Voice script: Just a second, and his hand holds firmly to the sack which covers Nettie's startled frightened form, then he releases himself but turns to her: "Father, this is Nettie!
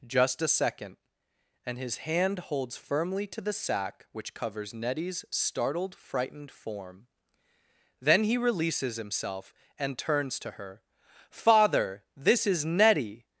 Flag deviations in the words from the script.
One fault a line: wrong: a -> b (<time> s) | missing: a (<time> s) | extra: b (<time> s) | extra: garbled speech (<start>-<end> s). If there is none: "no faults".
wrong: but -> and (9.8 s)